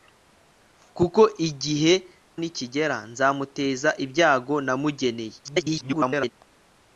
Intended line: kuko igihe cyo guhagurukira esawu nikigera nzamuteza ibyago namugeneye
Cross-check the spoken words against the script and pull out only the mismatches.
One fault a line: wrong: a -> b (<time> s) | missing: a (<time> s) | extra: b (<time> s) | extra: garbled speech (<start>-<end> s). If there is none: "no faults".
missing: cyo guhagurukira esawu (1.9 s)
extra: garbled speech (5.4-6.3 s)